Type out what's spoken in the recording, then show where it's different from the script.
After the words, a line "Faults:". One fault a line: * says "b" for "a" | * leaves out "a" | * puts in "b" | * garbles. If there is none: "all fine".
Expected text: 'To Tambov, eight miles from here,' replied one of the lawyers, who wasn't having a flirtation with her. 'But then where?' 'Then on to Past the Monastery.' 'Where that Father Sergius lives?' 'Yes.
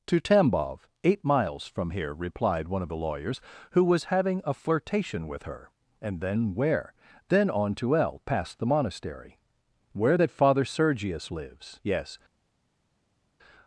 'To Tambov, eight miles from here,' replied one of the lawyers, who was having a flirtation with her. 'And then where?' 'Then on to L, past the Monastery.' 'Where that Father Sergius lives?' 'Yes.
Faults:
* says "was" for "wasn't"
* says "And" for "But"
* puts in "L"